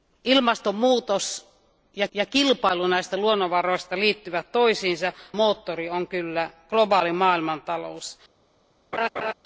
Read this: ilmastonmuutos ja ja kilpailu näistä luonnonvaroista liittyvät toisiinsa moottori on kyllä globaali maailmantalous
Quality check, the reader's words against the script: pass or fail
pass